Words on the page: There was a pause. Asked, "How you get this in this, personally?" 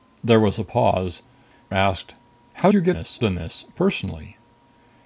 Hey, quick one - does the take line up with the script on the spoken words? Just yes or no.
yes